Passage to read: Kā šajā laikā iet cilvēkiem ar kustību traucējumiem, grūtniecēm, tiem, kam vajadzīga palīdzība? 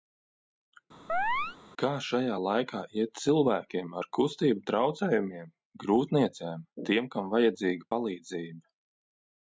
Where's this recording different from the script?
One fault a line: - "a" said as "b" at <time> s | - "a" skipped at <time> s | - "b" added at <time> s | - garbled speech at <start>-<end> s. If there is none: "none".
none